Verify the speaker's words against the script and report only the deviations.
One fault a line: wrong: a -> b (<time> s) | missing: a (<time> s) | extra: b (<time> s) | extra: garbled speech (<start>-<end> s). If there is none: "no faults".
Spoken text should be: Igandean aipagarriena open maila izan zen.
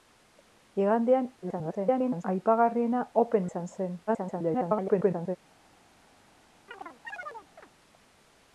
extra: garbled speech (1.4-2.2 s)
missing: maila (3.5 s)
extra: garbled speech (4.1-5.4 s)